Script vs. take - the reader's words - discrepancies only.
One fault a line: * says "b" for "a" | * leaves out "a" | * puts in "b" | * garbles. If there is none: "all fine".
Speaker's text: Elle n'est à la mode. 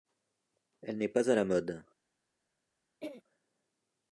* puts in "pas"